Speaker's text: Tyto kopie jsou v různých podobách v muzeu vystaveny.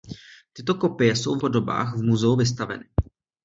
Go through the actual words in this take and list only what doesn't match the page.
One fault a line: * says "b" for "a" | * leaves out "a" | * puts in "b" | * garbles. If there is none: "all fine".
* leaves out "různých"